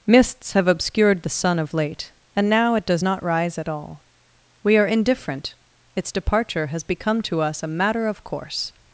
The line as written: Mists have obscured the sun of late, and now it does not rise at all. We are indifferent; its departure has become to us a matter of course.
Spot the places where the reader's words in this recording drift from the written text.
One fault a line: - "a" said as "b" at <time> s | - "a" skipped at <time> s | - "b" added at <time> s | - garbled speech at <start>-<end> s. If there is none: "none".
none